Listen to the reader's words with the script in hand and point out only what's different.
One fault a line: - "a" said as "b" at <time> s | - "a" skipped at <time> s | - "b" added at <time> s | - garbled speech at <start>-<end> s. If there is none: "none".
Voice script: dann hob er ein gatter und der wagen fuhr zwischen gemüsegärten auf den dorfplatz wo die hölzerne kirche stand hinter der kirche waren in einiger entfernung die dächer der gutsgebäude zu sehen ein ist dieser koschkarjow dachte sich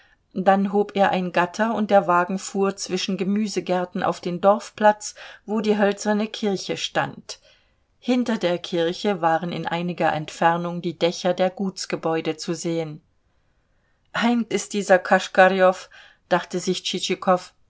none